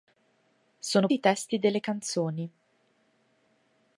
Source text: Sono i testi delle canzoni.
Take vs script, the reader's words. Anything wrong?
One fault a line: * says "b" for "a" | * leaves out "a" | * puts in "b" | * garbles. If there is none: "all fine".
all fine